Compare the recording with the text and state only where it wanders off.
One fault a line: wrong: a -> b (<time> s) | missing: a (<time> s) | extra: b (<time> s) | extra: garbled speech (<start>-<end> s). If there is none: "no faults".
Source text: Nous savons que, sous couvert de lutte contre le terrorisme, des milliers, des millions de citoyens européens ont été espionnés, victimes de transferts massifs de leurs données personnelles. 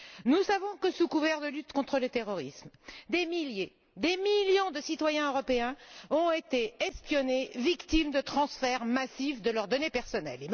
no faults